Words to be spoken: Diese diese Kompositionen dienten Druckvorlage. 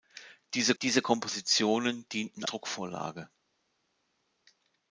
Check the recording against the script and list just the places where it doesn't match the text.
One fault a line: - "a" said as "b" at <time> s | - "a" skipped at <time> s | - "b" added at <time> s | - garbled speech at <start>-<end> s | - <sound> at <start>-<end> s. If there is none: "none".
none